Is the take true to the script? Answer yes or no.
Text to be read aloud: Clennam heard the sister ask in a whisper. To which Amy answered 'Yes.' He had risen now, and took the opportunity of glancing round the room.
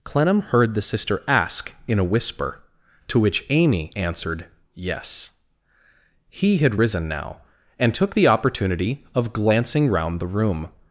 yes